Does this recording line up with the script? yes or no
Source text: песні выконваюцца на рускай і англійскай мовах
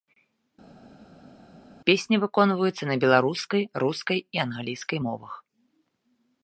no